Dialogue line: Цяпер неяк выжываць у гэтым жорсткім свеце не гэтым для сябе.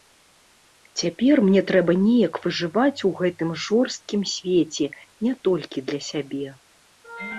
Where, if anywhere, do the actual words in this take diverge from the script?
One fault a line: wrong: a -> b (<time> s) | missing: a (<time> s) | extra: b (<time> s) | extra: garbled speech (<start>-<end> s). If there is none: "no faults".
extra: мне трэба (1.5 s)
wrong: гэтым -> толькі (5.5 s)